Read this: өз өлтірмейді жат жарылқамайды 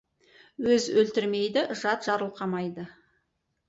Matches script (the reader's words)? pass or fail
pass